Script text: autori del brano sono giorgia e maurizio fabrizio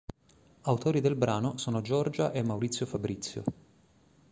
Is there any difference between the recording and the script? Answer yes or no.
no